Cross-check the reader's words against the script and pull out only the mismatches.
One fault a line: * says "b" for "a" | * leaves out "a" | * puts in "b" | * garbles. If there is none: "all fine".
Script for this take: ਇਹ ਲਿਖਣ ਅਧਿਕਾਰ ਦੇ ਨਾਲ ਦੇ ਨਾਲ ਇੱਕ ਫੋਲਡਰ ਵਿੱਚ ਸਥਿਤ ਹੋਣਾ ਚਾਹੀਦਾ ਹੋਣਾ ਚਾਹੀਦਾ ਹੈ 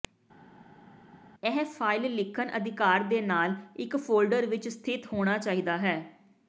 * puts in "ਫਾਇਲ"
* leaves out "ਦੇ ਨਾਲ"
* leaves out "ਹੋਣਾ ਚਾਹੀਦਾ"